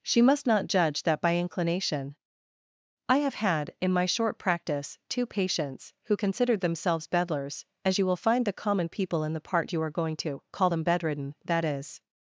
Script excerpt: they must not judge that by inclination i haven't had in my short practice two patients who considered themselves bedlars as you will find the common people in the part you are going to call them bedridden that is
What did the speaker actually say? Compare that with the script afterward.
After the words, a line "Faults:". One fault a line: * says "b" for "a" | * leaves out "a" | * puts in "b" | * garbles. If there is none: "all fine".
she must not judge that by inclination i have had in my short practice two patients who considered themselves bedlars as you will find the common people in the part you are going to call them bedridden that is
Faults:
* says "she" for "they"
* says "have" for "haven't"